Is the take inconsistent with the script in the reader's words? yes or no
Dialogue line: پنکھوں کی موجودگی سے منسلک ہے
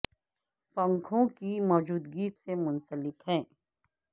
no